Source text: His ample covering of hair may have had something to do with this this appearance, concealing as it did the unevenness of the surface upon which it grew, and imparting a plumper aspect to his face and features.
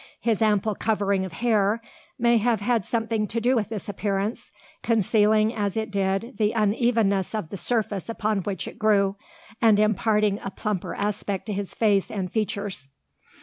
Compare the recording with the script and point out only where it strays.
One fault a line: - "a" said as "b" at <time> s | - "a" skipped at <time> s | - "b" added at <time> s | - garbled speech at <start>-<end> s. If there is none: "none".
- "this" skipped at 3.9 s